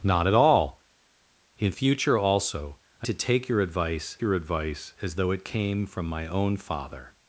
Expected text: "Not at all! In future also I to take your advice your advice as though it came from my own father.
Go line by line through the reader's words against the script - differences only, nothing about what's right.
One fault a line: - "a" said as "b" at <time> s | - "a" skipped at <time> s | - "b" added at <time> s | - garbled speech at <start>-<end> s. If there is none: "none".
none